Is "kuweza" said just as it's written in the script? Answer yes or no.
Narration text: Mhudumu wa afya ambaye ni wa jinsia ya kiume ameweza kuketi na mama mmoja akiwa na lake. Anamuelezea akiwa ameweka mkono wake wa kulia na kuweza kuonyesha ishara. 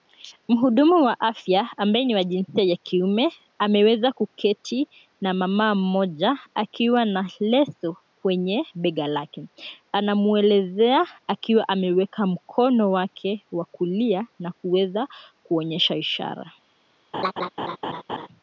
yes